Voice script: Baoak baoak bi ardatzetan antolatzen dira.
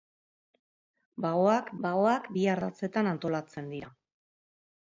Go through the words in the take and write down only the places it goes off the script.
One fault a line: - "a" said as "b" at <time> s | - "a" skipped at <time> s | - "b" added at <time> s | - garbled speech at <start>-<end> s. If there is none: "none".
none